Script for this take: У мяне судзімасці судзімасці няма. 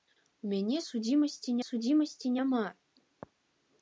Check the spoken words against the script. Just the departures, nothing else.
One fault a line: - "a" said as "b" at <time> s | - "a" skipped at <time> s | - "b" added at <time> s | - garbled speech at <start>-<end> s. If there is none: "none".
none